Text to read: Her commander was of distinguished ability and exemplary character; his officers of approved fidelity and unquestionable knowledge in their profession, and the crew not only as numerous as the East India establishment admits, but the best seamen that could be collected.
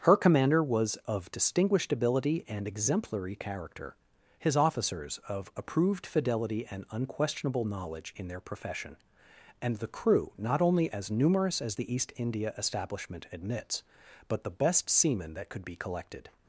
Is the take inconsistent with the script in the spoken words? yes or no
no